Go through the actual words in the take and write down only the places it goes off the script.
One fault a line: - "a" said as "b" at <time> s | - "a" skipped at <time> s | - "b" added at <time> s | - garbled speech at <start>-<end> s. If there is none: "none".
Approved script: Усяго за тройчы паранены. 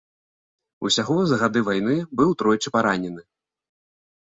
- "гады вайны быў" added at 1.4 s